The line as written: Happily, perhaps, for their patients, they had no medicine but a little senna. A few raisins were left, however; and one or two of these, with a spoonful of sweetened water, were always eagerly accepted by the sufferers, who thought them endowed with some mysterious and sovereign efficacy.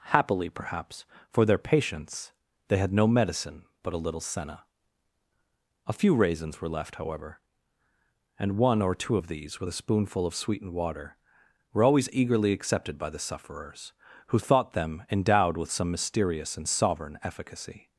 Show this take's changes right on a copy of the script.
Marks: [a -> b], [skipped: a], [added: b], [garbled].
Happily, perhaps, for their patients, they had no medicine but a little senna. A few raisins were left, however; and one or two of these, with a spoonful of sweetened water, were always eagerly accepted by the sufferers, who thought them endowed with some mysterious and sovereign efficacy.